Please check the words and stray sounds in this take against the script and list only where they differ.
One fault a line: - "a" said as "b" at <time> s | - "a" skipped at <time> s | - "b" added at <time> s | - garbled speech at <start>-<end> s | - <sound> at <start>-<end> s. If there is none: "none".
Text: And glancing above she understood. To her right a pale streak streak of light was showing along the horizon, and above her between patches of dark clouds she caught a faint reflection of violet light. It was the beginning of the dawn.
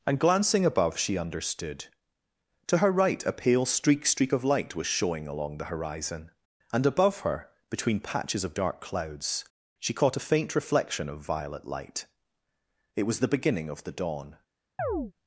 - chirp at 14.8-15.1 s